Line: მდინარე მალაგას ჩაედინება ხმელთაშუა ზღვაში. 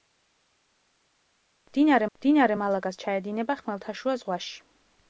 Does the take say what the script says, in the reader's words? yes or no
no